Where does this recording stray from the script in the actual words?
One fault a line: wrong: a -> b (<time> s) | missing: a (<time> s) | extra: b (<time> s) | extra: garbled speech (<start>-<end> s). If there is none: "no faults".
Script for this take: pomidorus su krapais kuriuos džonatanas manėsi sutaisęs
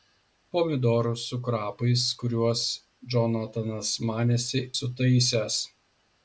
no faults